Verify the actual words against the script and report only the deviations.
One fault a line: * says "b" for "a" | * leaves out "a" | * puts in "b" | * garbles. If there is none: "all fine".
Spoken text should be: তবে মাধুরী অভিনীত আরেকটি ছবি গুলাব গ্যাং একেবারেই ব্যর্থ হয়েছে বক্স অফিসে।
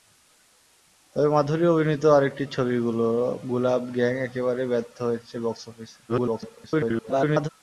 * garbles